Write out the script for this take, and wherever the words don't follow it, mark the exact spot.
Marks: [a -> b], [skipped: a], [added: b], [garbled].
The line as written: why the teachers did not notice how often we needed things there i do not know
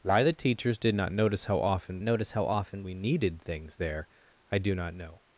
why the teachers did not notice how often [added: notice how often] we needed things there i do not know